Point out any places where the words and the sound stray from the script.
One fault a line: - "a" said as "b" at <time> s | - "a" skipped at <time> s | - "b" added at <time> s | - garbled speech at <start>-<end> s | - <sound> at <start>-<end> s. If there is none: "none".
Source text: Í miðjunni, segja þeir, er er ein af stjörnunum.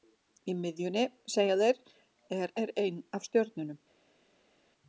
none